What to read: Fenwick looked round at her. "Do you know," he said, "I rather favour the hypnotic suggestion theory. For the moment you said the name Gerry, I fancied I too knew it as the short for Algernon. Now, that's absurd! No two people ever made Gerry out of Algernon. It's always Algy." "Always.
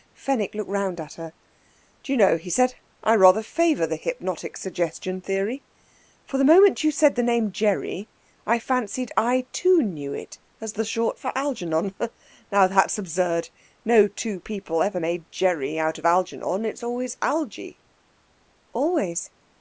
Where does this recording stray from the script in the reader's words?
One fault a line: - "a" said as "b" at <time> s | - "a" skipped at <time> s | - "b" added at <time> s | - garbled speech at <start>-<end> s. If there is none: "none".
none